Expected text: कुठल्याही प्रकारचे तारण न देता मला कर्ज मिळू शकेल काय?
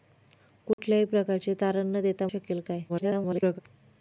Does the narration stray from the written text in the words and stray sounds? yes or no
yes